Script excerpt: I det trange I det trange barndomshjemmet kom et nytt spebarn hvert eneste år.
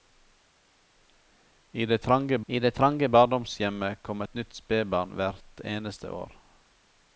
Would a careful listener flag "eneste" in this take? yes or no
no